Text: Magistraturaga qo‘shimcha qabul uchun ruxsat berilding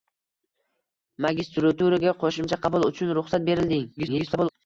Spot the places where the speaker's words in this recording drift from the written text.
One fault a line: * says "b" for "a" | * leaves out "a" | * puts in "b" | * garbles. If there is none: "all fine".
* garbles